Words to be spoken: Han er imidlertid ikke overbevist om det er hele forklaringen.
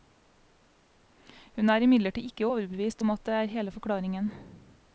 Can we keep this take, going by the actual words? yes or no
no